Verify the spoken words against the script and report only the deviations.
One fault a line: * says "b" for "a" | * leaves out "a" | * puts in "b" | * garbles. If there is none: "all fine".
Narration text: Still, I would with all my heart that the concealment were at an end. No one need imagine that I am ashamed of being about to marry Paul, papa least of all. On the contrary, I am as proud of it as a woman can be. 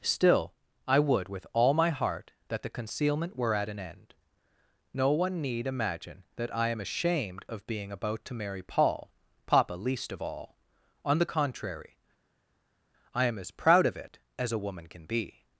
all fine